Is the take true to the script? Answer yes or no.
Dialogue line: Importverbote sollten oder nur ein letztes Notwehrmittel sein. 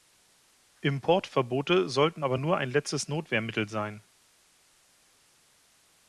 no